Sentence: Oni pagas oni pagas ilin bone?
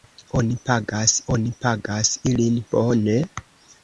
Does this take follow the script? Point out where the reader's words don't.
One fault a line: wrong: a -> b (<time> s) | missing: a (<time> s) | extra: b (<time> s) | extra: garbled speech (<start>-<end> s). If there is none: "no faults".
no faults